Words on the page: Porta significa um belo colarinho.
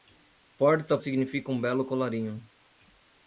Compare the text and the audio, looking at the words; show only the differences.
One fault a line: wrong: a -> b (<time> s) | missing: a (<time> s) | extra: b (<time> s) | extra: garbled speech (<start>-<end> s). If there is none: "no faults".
no faults